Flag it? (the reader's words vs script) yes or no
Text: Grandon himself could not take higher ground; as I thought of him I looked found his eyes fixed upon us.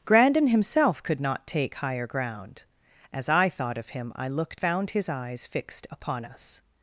no